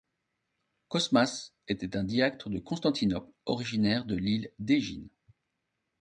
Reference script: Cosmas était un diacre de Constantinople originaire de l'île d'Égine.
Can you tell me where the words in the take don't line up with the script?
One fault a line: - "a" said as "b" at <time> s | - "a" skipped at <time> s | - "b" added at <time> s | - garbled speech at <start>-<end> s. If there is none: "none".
none